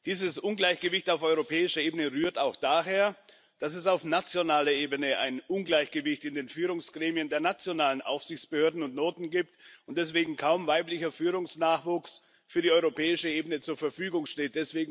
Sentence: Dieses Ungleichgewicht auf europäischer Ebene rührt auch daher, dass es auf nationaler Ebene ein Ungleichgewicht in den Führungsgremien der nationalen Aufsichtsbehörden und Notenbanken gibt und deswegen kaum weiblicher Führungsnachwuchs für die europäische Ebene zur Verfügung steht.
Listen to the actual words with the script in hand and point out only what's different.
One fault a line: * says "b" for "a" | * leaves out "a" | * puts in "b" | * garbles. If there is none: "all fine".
all fine